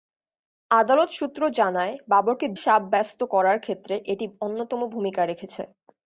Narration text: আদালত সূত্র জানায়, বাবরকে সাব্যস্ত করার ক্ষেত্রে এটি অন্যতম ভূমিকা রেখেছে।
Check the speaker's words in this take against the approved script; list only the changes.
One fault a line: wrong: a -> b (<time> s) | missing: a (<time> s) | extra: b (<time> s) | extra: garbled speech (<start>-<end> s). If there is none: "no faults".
no faults